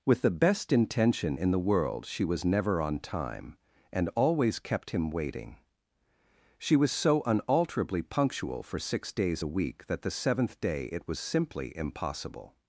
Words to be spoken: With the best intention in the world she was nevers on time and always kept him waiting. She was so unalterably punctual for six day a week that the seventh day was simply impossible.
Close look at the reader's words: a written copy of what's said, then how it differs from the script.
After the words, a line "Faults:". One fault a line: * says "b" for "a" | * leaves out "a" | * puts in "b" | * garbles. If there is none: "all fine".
With the best intention in the world she was never on time and always kept him waiting. She was so unalterably punctual for six days a week that the seventh day it was simply impossible.
Faults:
* says "never" for "nevers"
* says "days" for "day"
* puts in "it"